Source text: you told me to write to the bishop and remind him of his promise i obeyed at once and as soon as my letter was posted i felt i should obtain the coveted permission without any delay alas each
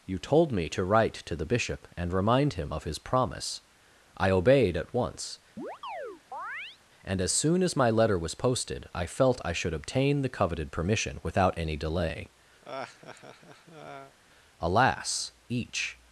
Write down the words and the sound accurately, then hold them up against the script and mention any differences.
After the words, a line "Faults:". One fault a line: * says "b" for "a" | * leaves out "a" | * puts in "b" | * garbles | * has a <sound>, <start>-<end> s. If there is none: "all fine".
you told me to write to the bishop and remind him of his promise i obeyed at once and as soon as my letter was posted i felt i should obtain the coveted permission without any delay alas each
Faults:
* has a chirp, 5.6-6.8 s
* has a laugh, 12.6-14.2 s